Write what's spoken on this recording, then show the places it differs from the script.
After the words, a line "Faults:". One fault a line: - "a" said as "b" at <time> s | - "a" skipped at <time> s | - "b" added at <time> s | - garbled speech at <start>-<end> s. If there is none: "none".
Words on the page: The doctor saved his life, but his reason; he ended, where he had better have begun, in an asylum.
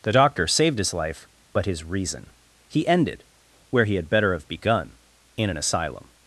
The doctor saved his life, but his reason; he ended, where he had better have begun, in an asylum.
Faults:
none